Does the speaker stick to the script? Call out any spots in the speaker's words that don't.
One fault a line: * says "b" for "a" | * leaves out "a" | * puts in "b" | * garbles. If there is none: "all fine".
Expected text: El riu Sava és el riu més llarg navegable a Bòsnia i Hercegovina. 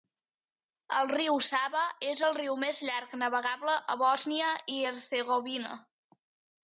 all fine